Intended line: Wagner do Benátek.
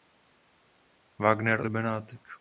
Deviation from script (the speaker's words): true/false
false